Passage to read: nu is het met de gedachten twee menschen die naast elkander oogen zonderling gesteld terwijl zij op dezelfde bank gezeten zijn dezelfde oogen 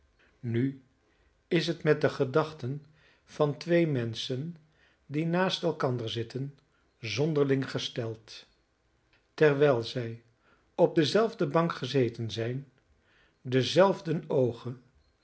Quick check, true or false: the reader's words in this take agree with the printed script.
false